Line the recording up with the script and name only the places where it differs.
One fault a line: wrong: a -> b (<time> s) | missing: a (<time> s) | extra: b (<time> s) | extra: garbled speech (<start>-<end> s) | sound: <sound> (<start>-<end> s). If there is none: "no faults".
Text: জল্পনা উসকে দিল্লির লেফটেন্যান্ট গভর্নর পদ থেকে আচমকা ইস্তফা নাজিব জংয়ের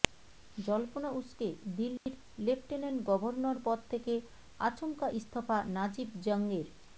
sound: dropout (2.0-2.1 s)